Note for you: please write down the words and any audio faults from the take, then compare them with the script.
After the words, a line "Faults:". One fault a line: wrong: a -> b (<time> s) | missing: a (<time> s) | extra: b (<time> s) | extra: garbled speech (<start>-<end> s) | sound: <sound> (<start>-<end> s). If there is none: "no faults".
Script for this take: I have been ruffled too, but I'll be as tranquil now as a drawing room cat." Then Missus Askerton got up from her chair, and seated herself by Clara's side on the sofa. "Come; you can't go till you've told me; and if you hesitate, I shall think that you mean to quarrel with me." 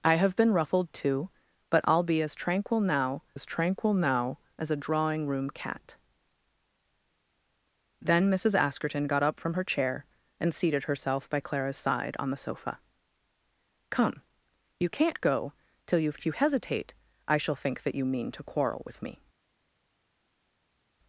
I have been ruffled too, but I'll be as tranquil now as tranquil now as a drawing room cat." Then Missus Askerton got up from her chair, and seated herself by Clara's side on the sofa. "Come; you can't go till you've if you hesitate, I shall think that you mean to quarrel with me."
Faults:
extra: tranquil now as (3.4 s)
missing: told me and (16.2 s)